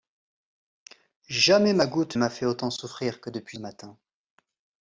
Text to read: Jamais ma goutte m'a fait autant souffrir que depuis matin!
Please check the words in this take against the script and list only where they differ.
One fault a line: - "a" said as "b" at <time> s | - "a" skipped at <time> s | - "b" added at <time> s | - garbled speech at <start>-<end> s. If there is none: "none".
none